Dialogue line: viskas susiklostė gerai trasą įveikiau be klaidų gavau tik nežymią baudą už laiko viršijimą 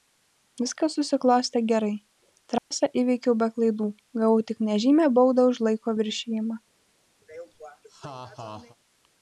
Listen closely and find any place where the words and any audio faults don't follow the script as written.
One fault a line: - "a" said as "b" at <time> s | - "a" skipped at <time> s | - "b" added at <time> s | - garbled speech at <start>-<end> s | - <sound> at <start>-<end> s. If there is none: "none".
- dropout at 2.6-2.7 s
- laugh at 7.2-8.8 s